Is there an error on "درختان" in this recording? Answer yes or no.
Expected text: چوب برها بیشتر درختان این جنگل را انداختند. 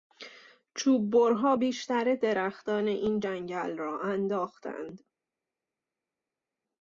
no